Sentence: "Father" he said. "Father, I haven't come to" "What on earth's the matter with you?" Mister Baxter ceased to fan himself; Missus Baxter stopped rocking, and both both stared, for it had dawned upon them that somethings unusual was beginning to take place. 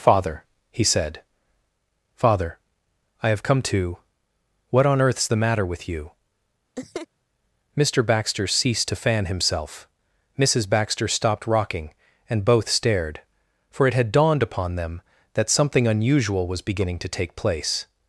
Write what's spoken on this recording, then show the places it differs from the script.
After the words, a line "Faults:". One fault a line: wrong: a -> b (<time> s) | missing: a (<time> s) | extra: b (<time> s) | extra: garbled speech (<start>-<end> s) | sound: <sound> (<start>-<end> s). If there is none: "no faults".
"Father" he said. "Father, I have come to" "What on earth's the matter with you?" Mister Baxter ceased to fan himself; Missus Baxter stopped rocking, and both stared, for it had dawned upon them that something unusual was beginning to take place.
Faults:
wrong: haven't -> have (3.3 s)
sound: laugh (6.8-7.1 s)
missing: both (12.7 s)
wrong: somethings -> something (15.5 s)